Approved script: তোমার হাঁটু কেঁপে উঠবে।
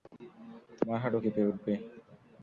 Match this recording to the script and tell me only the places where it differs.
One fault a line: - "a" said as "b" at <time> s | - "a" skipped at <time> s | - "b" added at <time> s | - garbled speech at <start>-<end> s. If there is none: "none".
none